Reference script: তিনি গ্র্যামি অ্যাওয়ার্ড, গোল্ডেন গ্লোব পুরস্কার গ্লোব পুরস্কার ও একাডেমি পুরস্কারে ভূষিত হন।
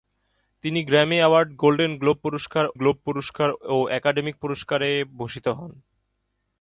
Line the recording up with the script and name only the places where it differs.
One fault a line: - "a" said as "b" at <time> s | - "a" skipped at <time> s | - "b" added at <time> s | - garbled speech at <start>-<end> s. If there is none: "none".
none